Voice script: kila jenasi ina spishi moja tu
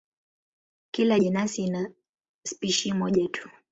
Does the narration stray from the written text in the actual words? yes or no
no